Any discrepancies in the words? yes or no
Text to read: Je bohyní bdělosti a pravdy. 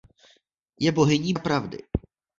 yes